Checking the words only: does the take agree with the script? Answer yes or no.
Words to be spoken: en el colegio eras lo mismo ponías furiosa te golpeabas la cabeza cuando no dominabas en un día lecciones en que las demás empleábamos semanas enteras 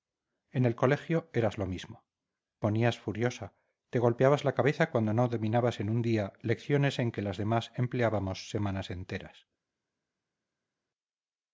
yes